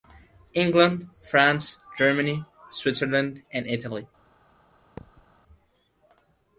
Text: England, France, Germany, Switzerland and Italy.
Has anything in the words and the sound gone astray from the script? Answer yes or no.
yes